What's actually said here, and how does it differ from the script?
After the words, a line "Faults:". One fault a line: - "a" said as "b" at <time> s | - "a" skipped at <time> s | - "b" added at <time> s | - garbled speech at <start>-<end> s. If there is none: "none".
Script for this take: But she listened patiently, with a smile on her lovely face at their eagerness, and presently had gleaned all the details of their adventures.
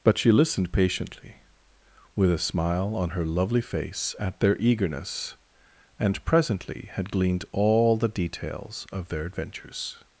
But she listened patiently, with a smile on her lovely face at their eagerness, and presently had gleaned all the details of their adventures.
Faults:
none